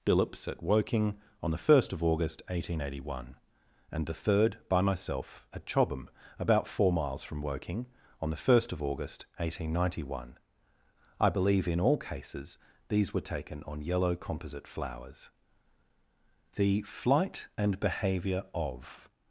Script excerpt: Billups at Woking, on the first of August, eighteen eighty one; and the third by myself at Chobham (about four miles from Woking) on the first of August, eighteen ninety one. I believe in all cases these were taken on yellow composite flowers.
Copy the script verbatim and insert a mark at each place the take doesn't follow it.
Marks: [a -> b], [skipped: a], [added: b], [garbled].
Billups at Woking, on the first of August, eighteen eighty one; and the third by myself at Chobham (about four miles from Woking) on the first of August, eighteen ninety one. I believe in all cases these were taken on yellow composite flowers. [added: The flight and behaviour of]